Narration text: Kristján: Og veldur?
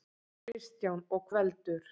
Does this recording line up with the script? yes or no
yes